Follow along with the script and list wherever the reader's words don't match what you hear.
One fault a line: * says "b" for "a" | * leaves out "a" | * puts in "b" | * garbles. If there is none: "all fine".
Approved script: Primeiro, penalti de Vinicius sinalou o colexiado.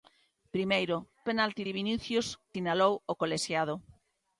all fine